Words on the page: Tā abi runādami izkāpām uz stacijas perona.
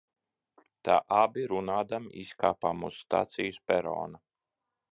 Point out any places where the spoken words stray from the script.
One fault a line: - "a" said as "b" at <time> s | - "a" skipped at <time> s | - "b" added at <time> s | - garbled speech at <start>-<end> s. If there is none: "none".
none